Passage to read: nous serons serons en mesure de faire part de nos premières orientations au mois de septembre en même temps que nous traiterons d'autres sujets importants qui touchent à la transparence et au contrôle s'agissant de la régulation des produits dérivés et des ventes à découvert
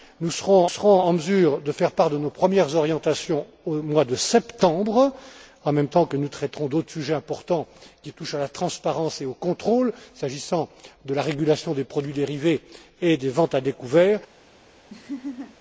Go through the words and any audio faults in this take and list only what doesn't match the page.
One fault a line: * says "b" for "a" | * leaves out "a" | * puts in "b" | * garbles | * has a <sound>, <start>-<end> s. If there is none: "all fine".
* has a laugh, 14.9-15.6 s